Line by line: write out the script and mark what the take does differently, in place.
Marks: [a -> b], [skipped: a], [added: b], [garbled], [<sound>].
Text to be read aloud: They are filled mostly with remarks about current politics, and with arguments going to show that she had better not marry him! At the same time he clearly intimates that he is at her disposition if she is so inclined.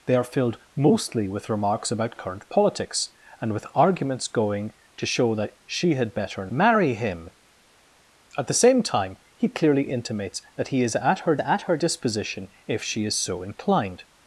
They are filled mostly with remarks about current politics, and with arguments going to show that she had better [skipped: not] marry him! At the same time he clearly intimates that he is at her [added: at her] disposition if she is so inclined.